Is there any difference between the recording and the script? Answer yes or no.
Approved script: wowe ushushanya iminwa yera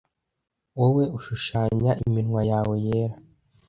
yes